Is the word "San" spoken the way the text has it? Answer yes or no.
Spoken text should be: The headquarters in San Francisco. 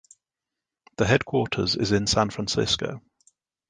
yes